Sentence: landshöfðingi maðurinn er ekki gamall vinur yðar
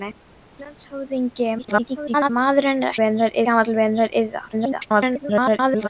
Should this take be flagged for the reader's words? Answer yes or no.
yes